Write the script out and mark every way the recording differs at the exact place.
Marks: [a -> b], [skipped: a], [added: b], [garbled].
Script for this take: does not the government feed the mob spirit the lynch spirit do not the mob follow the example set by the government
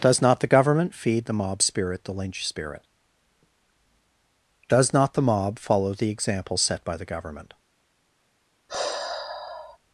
does not the government feed the mob spirit the lynch spirit [do -> does] not the mob follow the example set by the government